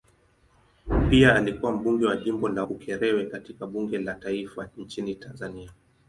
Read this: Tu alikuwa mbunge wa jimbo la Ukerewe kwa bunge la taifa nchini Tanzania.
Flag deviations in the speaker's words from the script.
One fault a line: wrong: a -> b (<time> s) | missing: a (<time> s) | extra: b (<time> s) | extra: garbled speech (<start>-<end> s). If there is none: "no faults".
wrong: Tu -> Pia (1.1 s)
wrong: kwa -> katika (3.2 s)